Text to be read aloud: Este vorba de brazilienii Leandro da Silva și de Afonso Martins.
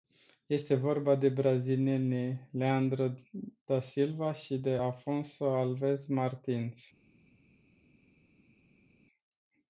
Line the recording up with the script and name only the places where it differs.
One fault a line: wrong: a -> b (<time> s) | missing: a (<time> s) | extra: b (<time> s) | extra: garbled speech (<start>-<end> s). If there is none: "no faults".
extra: Alves (5.5 s)